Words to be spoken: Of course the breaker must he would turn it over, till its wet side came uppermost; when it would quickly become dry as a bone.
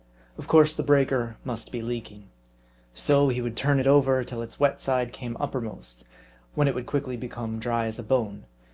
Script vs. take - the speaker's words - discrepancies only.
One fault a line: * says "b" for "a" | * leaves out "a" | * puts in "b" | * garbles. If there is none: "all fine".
* puts in "be leaking So"